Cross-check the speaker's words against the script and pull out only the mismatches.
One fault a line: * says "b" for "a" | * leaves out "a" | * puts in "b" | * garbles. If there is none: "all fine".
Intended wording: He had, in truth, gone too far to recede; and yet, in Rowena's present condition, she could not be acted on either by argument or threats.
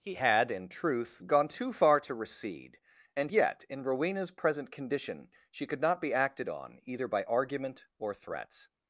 all fine